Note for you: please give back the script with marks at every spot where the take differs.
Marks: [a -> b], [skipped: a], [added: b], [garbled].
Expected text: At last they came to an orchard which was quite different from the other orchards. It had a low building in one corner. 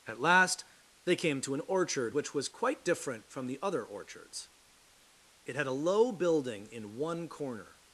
At last they came to an orchard which was quite different from the other orchards. It had a low building in one corner.